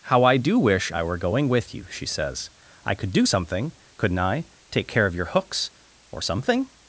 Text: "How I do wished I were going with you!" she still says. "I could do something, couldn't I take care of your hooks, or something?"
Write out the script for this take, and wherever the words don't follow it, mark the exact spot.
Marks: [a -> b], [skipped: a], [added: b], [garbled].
"How I do [wished -> wish] I were going with you!" she [skipped: still] says. "I could do something, couldn't I take care of your hooks, or something?"